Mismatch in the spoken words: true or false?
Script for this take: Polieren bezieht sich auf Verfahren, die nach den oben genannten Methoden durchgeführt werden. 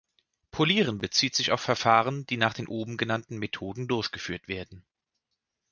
false